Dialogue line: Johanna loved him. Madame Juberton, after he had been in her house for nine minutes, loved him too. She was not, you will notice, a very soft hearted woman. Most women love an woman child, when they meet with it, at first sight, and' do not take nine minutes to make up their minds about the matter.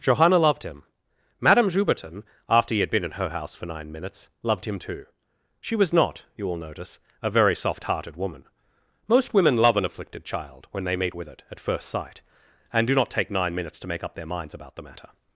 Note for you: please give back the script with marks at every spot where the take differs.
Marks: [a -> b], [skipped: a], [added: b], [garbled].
Johanna loved him. Madame Juberton, after he had been in her house for nine minutes, loved him too. She was not, you will notice, a very soft hearted woman. Most women love an [woman -> afflicted] child, when they meet with it, at first sight, and' do not take nine minutes to make up their minds about the matter.